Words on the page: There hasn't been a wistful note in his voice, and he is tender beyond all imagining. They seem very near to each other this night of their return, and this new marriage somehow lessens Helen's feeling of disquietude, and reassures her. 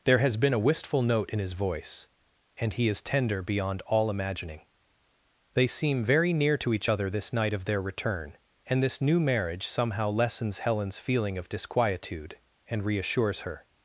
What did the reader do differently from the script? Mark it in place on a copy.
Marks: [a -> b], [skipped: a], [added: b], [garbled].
There [hasn't -> has] been a wistful note in his voice, and he is tender beyond all imagining. They seem very near to each other this night of their return, and this new marriage somehow lessens Helen's feeling of disquietude, and reassures her.